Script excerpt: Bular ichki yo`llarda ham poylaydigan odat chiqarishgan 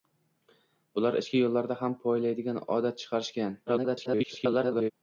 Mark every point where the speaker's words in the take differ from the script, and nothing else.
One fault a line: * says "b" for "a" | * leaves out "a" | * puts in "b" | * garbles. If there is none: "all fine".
* garbles